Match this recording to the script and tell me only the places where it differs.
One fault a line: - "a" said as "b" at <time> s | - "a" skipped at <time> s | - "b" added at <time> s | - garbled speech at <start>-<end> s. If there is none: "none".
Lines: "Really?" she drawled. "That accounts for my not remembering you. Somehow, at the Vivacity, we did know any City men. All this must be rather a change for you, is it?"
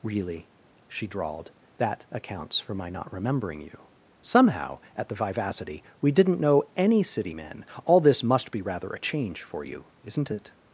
- "did" said as "didn't" at 6.1 s
- "is" said as "isn't" at 10.0 s